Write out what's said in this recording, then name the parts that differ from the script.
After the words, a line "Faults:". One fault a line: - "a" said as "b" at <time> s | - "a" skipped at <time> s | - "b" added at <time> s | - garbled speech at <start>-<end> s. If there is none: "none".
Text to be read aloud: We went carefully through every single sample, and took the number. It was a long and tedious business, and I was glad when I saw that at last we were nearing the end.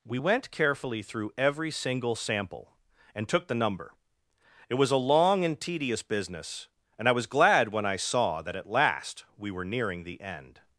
We went carefully through every single sample, and took the number. It was a long and tedious business, and I was glad when I saw that at last we were nearing the end.
Faults:
none